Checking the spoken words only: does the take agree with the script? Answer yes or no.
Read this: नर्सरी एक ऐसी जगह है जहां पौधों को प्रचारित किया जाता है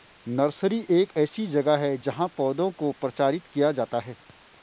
yes